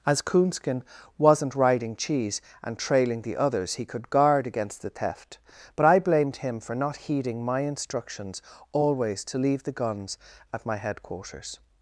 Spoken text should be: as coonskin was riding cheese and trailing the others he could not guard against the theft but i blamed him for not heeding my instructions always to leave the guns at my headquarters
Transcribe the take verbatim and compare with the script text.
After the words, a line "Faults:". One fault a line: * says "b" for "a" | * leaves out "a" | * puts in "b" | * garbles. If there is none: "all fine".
as coonskin wasn't riding cheese and trailing the others he could guard against the theft but i blamed him for not heeding my instructions always to leave the guns at my headquarters
Faults:
* says "wasn't" for "was"
* leaves out "not"